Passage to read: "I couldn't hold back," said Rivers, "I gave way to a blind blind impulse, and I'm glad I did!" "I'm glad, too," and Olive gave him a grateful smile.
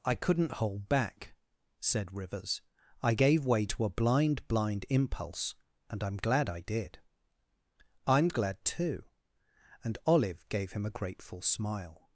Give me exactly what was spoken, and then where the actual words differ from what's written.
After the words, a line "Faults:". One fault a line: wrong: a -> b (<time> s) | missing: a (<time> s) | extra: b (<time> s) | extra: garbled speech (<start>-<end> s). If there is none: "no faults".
"I couldn't hold back," said Rivers, "I gave way to a blind blind impulse, and I'm glad I did!" "I'm glad, too," and Olive gave him a grateful smile.
Faults:
no faults